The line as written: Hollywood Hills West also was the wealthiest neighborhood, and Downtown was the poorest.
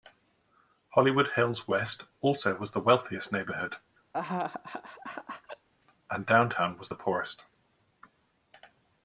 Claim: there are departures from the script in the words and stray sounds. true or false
true